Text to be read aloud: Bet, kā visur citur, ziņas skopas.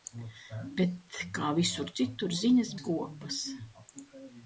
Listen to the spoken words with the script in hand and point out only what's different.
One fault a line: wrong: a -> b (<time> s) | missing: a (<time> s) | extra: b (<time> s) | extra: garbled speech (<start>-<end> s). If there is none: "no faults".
no faults